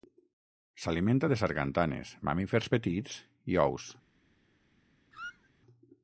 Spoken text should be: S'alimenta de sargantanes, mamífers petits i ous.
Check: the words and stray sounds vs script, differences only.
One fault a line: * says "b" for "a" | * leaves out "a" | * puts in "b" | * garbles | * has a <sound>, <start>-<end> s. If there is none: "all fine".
* has a squeak, 5.1-5.5 s